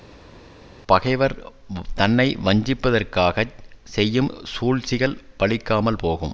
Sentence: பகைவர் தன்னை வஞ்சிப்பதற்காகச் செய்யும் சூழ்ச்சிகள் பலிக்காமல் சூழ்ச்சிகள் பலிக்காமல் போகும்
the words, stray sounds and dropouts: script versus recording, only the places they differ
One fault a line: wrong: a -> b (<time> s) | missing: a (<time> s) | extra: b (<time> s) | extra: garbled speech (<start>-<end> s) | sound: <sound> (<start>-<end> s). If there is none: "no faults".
missing: சூழ்ச்சிகள் பலிக்காமல் (6.0 s)